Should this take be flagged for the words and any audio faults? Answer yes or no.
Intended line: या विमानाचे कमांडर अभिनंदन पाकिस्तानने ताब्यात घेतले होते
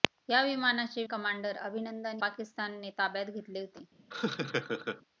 yes